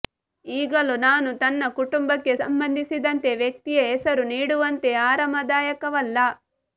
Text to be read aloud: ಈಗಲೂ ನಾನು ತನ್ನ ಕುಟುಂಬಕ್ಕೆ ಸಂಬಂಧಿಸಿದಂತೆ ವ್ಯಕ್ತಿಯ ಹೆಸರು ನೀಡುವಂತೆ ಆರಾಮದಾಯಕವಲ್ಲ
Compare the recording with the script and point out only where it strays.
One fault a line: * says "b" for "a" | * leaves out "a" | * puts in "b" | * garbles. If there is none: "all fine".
all fine